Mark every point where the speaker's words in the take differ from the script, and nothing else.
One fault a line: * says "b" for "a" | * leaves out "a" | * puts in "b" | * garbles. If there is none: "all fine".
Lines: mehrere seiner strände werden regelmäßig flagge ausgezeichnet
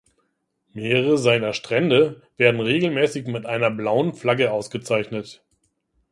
* puts in "mit einer blauen"